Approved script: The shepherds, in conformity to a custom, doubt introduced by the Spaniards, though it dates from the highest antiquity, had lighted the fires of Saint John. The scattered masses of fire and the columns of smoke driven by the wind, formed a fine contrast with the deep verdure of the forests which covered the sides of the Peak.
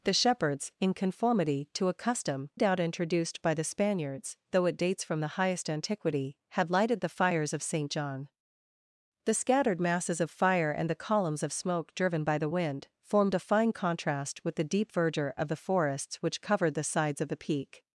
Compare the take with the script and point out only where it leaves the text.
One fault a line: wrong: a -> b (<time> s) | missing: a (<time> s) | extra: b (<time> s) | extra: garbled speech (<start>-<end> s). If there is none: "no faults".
no faults